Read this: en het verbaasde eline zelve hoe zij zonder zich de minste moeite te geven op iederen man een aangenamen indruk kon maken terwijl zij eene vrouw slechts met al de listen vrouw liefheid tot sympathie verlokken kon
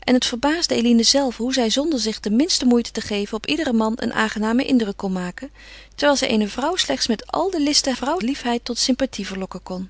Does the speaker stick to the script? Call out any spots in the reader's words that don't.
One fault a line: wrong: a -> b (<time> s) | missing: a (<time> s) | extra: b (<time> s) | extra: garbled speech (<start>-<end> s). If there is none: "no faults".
no faults